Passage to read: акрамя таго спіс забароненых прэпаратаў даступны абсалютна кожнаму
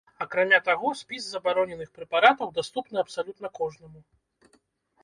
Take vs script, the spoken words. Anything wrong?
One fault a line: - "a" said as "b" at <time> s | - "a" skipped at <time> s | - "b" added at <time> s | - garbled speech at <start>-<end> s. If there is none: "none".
none